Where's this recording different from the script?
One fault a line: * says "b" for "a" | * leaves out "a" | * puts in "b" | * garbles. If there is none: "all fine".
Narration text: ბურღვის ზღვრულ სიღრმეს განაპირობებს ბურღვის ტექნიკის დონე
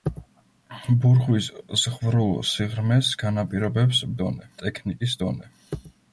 * says "დონე" for "ბურღვის"